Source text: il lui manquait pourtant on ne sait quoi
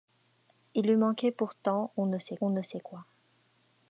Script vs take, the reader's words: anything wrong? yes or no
yes